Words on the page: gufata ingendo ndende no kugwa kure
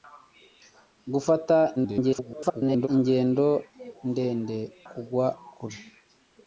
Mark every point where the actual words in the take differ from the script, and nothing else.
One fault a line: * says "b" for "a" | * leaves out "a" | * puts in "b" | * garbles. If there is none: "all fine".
* garbles
* leaves out "no"